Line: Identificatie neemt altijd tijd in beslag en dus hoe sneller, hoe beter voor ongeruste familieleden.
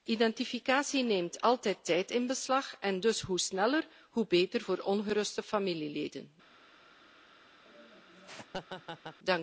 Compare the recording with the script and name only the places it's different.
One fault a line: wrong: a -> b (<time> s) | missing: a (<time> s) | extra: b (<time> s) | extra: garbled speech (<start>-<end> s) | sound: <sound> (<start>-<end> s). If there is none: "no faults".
sound: laugh (7.7-9.2 s)